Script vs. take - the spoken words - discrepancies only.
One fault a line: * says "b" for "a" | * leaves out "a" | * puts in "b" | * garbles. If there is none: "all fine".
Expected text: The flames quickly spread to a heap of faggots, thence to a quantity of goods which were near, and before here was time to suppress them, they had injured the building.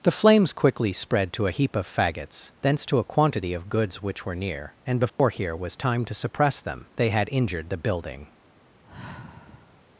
all fine